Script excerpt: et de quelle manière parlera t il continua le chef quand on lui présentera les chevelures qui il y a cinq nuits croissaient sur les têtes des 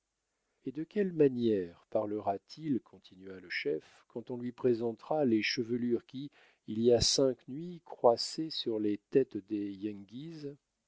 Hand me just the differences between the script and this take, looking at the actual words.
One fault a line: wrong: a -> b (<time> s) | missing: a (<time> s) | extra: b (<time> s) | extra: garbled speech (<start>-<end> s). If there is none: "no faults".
no faults